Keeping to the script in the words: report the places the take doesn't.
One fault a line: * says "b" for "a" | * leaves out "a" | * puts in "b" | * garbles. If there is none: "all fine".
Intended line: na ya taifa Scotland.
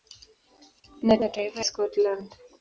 all fine